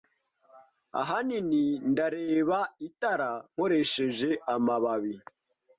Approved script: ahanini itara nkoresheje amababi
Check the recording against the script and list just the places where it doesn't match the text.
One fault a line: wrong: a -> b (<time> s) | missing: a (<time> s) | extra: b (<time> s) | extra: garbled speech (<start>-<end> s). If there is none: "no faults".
extra: ndareba (1.9 s)